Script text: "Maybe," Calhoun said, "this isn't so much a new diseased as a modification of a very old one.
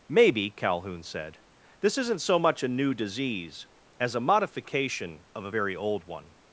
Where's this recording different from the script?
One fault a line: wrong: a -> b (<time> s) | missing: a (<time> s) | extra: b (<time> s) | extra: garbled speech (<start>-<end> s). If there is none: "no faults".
wrong: diseased -> disease (3.0 s)